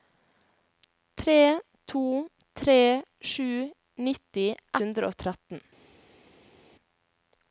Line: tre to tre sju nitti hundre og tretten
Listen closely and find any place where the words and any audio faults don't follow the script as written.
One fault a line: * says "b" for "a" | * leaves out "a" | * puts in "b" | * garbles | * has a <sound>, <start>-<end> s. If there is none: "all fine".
all fine